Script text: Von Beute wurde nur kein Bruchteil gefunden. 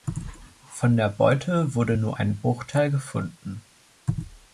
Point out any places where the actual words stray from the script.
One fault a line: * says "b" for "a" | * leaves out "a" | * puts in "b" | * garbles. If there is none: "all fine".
* puts in "der"
* says "ein" for "kein"